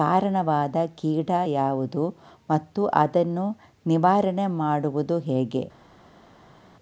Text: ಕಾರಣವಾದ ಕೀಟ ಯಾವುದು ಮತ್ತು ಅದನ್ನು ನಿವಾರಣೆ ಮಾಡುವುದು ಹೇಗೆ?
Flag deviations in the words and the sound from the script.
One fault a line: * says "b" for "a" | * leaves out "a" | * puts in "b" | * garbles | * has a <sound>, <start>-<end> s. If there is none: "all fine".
all fine